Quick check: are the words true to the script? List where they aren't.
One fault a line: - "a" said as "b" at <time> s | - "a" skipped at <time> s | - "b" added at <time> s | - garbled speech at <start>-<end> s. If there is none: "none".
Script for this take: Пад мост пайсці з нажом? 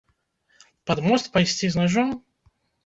none